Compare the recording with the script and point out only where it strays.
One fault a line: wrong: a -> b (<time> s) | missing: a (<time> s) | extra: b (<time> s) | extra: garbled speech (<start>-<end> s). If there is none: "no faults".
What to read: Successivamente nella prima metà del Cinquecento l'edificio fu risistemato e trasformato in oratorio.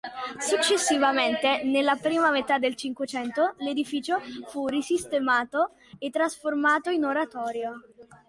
no faults